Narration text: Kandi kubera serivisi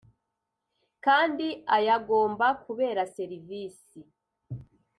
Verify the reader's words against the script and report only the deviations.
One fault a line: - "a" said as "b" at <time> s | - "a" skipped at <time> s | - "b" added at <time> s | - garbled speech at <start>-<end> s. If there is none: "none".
- "ayagomba" added at 1.8 s